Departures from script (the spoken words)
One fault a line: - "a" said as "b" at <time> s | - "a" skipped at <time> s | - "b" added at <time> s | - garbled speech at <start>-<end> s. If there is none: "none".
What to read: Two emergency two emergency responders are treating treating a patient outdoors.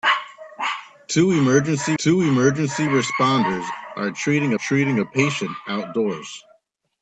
none